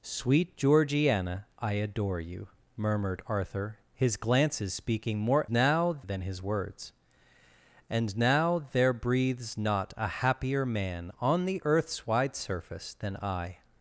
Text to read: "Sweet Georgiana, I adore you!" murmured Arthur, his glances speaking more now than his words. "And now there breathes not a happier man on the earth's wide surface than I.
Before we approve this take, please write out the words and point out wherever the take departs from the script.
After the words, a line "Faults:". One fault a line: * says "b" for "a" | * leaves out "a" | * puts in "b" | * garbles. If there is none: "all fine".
"Sweet Georgiana, I adore you!" murmured Arthur, his glances speaking more now than his words. "And now there breathes not a happier man on the earth's wide surface than I.
Faults:
all fine